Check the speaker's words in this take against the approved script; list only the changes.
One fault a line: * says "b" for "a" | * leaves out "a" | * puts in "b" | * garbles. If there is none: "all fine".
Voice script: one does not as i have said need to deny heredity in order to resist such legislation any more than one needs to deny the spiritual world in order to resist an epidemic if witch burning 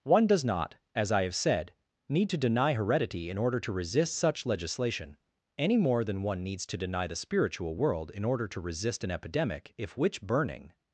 all fine